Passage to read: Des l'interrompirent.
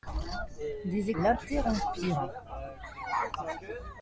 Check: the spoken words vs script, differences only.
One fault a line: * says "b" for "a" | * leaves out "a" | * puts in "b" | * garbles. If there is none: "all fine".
all fine